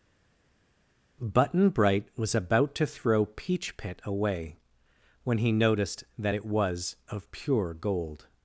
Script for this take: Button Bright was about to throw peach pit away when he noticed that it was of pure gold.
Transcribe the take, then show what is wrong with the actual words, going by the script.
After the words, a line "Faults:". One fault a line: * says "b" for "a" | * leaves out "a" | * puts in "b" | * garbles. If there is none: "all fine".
Button Bright was about to throw peach pit away when he noticed that it was of pure gold.
Faults:
all fine